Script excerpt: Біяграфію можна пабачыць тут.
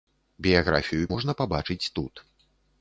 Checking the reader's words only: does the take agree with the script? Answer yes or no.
yes